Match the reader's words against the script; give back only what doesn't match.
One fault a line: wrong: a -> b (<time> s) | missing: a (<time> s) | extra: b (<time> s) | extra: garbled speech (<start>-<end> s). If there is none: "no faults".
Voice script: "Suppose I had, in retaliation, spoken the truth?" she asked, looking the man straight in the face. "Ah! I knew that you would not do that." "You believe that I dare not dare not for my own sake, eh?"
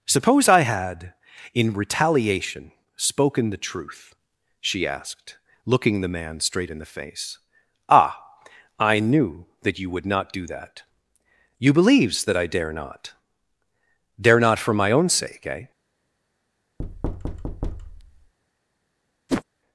wrong: believe -> believes (11.7 s)